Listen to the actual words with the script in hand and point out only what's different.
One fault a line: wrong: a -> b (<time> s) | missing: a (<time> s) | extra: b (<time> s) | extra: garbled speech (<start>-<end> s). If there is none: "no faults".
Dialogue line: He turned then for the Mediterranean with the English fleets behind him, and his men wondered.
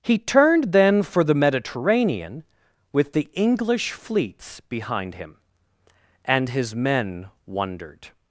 no faults